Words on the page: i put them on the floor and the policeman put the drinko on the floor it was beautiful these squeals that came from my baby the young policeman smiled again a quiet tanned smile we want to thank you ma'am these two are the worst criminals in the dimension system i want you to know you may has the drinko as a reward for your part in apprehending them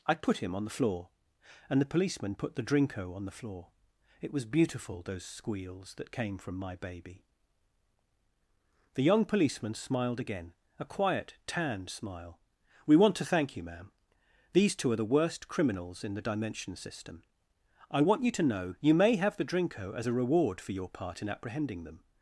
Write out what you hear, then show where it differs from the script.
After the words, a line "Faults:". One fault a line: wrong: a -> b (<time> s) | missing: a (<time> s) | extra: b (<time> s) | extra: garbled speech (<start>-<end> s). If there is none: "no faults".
i put him on the floor and the policeman put the drinko on the floor it was beautiful those squeals that came from my baby the young policeman smiled again a quiet tanned smile we want to thank you ma'am these two are the worst criminals in the dimension system i want you to know you may have the drinko as a reward for your part in apprehending them
Faults:
wrong: them -> him (0.4 s)
wrong: these -> those (5.0 s)
wrong: has -> have (19.2 s)